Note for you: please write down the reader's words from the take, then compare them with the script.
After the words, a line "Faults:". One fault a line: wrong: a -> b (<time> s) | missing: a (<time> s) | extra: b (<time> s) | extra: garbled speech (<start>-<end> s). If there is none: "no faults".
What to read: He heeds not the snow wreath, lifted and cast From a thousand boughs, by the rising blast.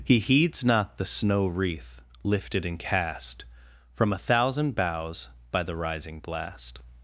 He heeds not the snow wreath, lifted and cast From a thousand boughs, by the rising blast.
Faults:
no faults